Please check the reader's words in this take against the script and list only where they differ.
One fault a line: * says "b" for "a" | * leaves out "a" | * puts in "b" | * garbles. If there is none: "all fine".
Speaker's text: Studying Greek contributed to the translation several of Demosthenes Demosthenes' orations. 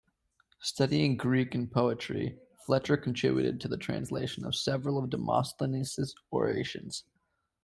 * puts in "and poetry Fletcher"
* puts in "of"
* leaves out "Demosthenes"